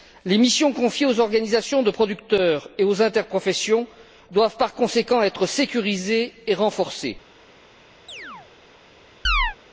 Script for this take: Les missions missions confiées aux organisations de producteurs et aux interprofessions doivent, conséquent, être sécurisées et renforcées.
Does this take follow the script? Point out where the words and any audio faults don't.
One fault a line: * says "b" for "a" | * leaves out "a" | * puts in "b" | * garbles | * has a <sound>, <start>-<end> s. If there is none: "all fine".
* leaves out "missions"
* puts in "par"
* has a chirp, 8.1-8.5 s
* has a chirp, 9.2-9.6 s